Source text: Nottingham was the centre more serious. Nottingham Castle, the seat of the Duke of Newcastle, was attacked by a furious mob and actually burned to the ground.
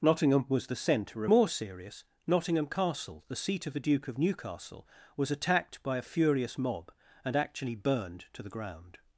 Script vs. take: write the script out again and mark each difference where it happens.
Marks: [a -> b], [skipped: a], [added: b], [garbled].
Nottingham was the centre more serious. Nottingham Castle, the seat of the Duke of Newcastle, was attacked by a furious mob and actually burned to the ground.